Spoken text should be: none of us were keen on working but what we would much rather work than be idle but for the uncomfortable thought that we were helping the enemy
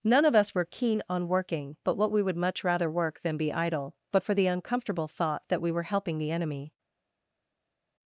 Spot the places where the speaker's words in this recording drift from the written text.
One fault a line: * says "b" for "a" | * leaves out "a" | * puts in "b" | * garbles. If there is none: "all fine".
all fine